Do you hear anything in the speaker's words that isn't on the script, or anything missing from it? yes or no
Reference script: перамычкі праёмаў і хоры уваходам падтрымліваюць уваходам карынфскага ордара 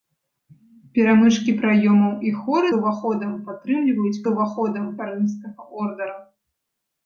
no